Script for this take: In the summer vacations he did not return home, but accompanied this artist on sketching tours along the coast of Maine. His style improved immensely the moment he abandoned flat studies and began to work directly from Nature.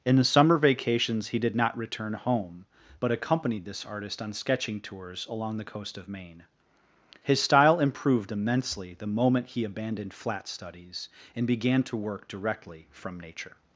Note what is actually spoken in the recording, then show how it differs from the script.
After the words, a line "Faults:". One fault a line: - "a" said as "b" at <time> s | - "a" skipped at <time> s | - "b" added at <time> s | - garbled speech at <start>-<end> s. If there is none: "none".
In the summer vacations he did not return home, but accompanied this artist on sketching tours along the coast of Maine. His style improved immensely the moment he abandoned flat studies and began to work directly from Nature.
Faults:
none